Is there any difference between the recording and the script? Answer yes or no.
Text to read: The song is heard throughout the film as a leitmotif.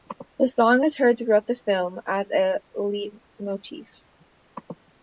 no